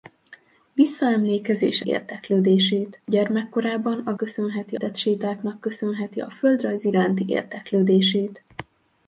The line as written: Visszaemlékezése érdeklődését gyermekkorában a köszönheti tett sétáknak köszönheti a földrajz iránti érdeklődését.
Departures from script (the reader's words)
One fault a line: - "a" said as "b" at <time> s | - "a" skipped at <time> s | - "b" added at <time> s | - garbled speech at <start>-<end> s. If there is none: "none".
none